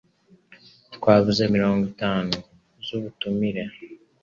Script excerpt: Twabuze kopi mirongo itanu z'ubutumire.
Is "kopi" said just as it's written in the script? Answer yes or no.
no